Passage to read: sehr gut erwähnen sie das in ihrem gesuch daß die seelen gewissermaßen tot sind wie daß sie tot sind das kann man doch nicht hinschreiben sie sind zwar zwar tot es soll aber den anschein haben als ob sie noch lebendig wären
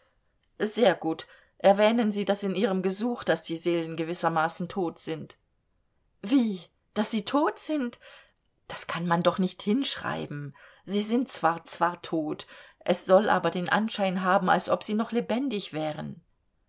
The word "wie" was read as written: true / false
true